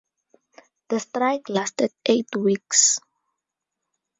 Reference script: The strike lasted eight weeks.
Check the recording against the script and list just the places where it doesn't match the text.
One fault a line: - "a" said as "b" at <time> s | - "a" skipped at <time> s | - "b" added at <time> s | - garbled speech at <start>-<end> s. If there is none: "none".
none